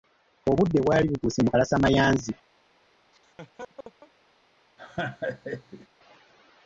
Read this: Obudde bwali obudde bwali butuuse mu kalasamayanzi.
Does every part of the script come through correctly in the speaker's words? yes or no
no